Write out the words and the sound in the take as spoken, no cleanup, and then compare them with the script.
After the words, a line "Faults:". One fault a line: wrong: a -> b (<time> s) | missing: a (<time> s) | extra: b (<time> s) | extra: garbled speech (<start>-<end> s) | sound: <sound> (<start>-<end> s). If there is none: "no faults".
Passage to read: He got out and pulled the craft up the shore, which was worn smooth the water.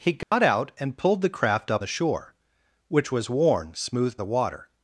He got out and pulled the craft up the shore, which was worn smooth the water.
Faults:
sound: dropout (0.2-0.3 s)